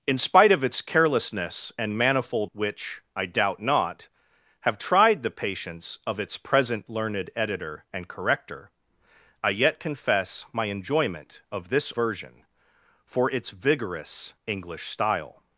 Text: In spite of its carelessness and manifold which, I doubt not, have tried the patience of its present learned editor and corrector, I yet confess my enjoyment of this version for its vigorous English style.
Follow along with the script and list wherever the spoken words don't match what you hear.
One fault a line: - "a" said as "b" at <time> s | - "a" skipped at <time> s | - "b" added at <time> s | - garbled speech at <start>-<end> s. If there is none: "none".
none